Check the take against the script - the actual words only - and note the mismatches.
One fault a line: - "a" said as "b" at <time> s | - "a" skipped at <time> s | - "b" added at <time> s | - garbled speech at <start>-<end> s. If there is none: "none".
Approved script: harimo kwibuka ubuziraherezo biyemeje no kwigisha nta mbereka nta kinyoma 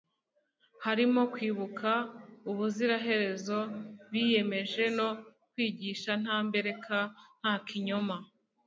none